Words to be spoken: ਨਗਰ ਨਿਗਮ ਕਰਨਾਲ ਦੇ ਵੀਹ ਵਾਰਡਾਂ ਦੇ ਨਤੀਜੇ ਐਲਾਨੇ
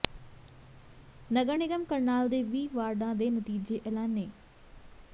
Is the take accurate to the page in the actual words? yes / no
yes